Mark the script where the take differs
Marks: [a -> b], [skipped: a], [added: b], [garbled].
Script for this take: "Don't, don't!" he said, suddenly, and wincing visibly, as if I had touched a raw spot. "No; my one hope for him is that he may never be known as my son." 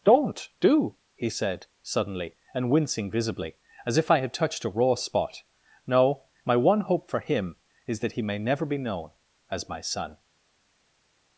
"Don't, [don't!" -> do] he said, suddenly, and wincing visibly, as if I had touched a raw spot. "No; my one hope for him is that he may never be known as my son."